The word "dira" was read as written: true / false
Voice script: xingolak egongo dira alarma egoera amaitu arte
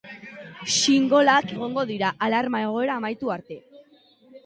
true